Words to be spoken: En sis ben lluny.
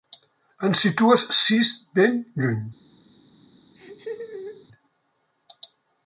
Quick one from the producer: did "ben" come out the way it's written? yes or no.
yes